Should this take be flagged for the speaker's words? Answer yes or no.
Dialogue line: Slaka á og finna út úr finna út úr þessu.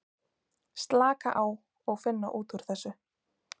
yes